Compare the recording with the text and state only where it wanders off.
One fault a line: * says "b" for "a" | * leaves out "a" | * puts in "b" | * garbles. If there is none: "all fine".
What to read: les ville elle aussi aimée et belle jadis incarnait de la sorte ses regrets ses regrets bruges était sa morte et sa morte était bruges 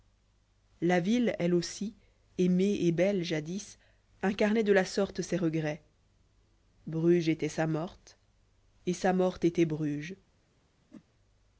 * says "la" for "les"
* leaves out "ses regrets"